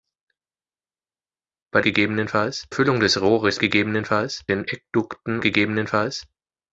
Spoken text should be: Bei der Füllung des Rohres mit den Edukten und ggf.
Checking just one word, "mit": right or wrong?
wrong